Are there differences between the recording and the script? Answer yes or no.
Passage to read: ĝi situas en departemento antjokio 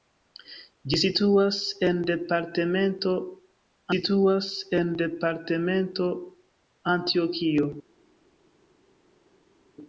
yes